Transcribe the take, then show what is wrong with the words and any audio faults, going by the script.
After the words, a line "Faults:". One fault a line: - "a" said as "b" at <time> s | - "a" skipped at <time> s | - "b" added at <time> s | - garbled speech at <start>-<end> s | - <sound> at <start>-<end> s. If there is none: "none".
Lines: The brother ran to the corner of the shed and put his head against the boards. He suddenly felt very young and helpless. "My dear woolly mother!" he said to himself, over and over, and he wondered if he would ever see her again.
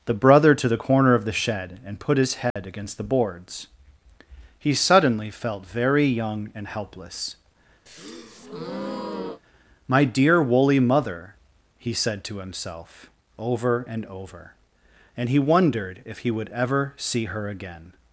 The brother to the corner of the shed and put his head against the boards. He suddenly felt very young and helpless. "My dear woolly mother!" he said to himself, over and over, and he wondered if he would ever see her again.
Faults:
- "ran" skipped at 0.6 s
- dropout at 2.5-2.6 s
- breath at 7.9-9.4 s